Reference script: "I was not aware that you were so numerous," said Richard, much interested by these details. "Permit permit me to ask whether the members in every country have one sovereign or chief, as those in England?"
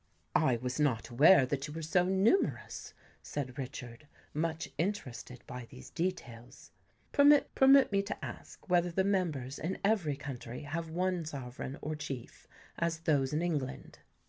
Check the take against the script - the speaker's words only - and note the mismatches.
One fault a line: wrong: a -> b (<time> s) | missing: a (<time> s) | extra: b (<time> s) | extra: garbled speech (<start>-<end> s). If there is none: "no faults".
no faults